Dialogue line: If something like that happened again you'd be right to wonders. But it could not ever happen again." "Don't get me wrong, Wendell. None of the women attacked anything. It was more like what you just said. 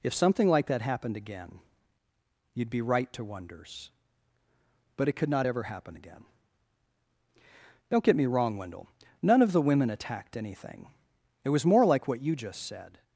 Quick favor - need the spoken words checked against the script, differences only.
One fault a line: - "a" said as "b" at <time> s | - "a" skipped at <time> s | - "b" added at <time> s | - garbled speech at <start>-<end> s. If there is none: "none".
none